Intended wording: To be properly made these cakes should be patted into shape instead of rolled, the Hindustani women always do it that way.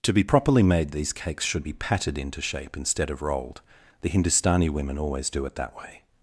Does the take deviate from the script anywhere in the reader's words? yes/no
no